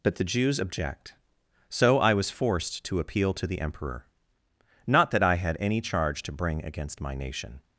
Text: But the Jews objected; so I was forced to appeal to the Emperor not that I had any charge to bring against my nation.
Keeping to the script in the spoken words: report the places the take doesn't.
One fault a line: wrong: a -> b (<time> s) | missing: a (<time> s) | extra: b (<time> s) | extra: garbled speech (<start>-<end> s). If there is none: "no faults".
wrong: objected -> object (0.6 s)